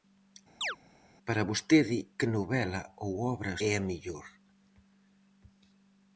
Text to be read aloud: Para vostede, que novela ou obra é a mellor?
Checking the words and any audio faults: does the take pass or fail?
fail